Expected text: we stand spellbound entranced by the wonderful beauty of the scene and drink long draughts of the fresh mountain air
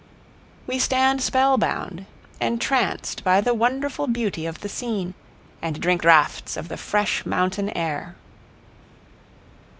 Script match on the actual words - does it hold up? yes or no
no